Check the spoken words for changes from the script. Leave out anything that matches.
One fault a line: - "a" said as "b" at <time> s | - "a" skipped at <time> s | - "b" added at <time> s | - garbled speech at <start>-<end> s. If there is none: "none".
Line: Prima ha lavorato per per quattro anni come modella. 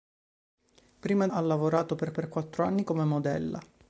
none